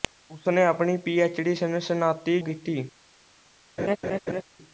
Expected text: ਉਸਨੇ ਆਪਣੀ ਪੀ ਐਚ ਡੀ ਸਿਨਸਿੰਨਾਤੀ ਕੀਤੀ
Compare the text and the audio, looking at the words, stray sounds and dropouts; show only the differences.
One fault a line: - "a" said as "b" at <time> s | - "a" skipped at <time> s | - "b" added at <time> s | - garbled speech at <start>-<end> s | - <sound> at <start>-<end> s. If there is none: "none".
- laugh at 3.8-4.4 s